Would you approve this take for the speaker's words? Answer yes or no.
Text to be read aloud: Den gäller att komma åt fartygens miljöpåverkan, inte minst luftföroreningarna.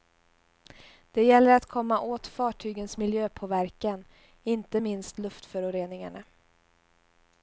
no